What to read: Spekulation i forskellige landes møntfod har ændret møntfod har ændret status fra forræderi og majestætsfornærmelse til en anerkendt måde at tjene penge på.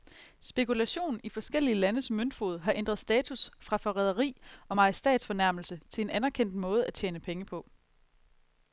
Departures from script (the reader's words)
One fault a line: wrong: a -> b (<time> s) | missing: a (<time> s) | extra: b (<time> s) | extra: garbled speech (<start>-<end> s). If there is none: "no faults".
missing: møntfod har ændret (3.0 s)